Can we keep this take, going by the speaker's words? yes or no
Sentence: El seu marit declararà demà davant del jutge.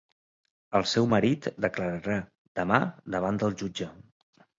yes